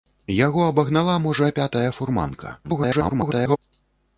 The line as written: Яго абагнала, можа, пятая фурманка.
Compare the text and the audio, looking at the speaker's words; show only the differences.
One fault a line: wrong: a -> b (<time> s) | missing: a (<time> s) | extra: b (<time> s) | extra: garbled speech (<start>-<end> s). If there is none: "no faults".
extra: garbled speech (2.6-3.6 s)